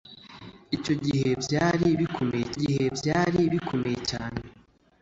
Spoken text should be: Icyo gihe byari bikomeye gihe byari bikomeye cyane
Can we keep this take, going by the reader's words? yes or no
yes